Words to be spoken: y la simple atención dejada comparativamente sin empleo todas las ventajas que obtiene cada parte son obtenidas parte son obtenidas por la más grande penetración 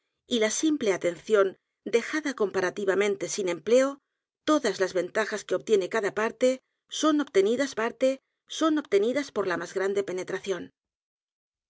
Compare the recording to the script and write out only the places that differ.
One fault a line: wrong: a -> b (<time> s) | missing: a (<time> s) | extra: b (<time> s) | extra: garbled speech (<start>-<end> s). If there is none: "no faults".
no faults